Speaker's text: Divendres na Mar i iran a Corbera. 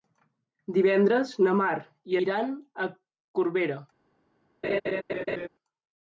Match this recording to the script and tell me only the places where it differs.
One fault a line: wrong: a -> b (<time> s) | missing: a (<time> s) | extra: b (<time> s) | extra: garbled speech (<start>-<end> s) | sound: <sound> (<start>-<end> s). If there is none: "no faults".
sound: laugh (4.6-5.5 s)